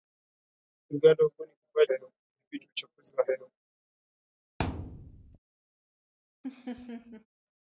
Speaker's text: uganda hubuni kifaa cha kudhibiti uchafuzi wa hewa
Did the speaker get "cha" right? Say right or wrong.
wrong